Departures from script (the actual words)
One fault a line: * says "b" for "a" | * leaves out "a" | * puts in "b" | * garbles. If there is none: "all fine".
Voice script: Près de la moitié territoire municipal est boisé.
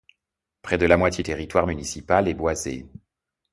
all fine